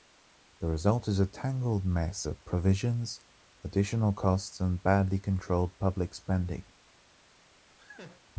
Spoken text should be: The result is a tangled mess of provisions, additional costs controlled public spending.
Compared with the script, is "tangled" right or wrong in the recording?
right